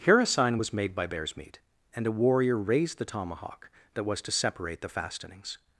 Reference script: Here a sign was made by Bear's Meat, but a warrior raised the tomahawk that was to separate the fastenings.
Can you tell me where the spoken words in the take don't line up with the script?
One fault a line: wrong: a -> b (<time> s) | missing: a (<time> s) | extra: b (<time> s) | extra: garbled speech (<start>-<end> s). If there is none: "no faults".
wrong: but -> and (1.9 s)